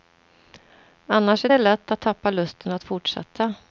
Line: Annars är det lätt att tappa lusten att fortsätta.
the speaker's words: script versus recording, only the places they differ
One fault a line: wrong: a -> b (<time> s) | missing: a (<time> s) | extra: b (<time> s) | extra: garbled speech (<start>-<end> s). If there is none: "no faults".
no faults